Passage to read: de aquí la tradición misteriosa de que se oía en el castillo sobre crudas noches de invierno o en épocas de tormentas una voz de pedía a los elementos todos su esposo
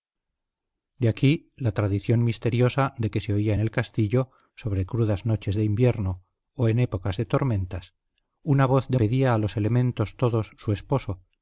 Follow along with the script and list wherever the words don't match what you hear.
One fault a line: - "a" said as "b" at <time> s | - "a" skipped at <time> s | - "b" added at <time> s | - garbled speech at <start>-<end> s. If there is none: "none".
none